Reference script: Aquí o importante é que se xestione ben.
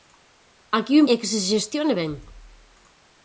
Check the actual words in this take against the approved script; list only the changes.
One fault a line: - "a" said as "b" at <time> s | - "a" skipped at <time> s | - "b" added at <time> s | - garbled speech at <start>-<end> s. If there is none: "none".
- "importante" skipped at 1.0 s